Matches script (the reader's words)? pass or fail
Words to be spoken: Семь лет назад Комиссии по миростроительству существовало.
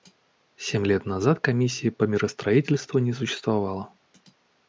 fail